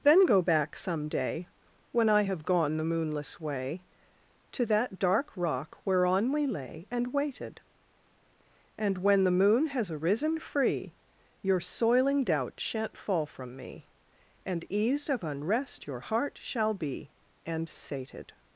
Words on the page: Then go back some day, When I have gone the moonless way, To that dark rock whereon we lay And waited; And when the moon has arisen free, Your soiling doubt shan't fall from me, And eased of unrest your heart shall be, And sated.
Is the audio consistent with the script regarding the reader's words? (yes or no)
yes